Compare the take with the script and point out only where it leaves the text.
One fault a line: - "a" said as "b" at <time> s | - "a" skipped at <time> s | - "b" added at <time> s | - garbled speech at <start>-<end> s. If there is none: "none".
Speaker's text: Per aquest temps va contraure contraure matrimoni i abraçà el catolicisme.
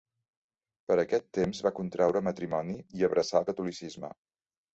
- "contraure" skipped at 2.2 s